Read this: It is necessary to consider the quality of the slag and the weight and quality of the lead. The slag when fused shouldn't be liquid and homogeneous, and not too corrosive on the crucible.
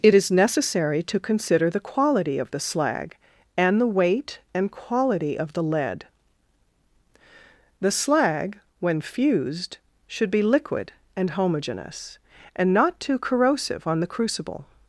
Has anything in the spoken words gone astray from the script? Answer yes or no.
yes